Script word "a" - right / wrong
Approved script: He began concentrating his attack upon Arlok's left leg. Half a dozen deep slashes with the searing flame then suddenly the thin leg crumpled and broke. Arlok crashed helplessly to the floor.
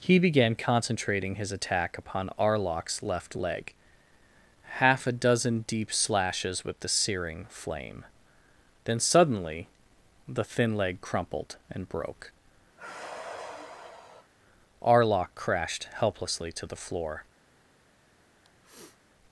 right